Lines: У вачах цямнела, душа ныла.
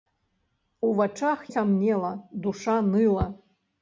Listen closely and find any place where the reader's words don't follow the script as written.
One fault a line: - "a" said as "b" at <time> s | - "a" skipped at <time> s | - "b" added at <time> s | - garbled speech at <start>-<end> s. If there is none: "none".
none